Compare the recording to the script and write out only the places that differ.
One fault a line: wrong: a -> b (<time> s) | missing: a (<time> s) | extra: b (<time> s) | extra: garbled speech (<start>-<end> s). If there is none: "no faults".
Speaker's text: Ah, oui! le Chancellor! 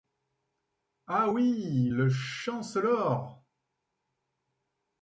no faults